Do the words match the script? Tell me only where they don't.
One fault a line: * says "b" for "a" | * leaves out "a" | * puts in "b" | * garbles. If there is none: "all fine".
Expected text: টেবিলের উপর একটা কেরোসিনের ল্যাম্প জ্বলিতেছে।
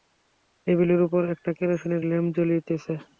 all fine